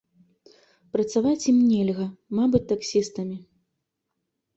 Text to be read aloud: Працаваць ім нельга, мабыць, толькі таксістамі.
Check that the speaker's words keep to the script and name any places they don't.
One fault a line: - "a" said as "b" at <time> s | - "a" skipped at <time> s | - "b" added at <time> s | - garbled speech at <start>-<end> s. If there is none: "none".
- "толькі" skipped at 2.6 s